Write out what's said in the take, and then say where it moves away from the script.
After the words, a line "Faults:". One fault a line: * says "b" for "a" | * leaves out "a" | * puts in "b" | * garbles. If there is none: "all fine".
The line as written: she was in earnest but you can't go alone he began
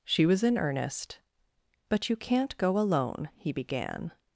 she was in earnest but you can't go alone he began
Faults:
all fine